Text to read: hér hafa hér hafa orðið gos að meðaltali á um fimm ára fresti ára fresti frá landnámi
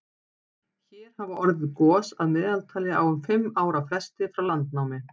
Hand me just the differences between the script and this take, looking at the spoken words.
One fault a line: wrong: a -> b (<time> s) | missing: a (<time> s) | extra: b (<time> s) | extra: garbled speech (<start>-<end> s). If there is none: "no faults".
missing: hér hafa (1.4 s)
missing: ára fresti (4.3 s)